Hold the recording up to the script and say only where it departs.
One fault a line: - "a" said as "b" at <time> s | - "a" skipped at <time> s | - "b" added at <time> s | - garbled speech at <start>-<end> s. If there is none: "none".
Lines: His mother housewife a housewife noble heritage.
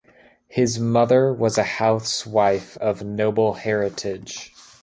- "housewife" said as "was" at 1.3 s
- "of" added at 2.7 s